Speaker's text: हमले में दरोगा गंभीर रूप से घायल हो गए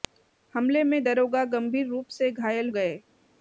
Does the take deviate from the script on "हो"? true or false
true